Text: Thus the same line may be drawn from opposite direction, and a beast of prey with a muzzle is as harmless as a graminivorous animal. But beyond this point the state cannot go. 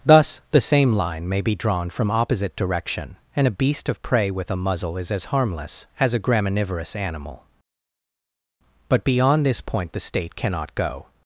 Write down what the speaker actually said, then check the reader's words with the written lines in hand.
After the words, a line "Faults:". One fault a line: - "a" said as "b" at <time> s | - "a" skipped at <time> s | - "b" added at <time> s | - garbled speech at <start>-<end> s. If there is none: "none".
Thus the same line may be drawn from opposite direction, and a beast of prey with a muzzle is as harmless as a graminivorous animal. But beyond this point the state cannot go.
Faults:
none